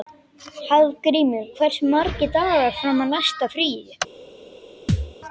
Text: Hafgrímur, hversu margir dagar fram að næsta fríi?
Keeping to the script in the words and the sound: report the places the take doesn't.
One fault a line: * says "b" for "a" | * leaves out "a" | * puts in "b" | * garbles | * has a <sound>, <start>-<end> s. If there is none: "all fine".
* has a thud, 4.9-5.1 s